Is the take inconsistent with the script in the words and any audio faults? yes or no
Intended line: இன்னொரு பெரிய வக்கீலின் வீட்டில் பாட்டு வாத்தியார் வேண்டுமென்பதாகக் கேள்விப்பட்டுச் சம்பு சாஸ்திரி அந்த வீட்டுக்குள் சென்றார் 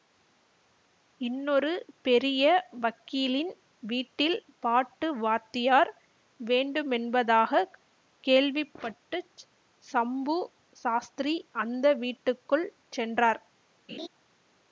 yes